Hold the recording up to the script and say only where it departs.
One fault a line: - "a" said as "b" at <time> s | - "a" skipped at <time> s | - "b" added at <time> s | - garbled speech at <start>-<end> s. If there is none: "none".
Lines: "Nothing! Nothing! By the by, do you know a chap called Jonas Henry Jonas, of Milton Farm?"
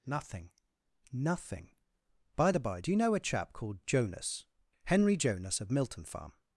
none